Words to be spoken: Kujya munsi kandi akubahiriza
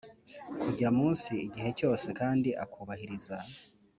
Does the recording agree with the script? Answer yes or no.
no